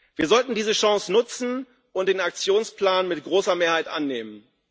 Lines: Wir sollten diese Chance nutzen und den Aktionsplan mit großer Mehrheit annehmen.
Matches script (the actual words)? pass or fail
pass